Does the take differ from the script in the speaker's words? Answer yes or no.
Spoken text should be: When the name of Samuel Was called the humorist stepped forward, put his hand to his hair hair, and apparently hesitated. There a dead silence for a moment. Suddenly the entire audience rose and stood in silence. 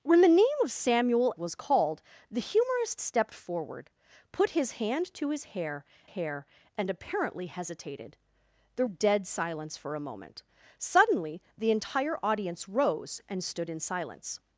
no